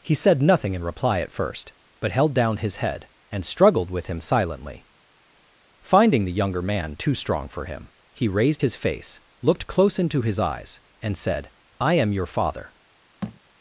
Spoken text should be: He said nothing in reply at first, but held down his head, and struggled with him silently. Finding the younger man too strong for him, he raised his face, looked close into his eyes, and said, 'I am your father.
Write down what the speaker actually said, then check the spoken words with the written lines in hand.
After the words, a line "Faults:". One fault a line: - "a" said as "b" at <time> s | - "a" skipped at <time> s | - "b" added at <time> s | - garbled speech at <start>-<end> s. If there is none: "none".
He said nothing in reply at first, but held down his head, and struggled with him silently. Finding the younger man too strong for him, he raised his face, looked close into his eyes, and said, 'I am your father.
Faults:
none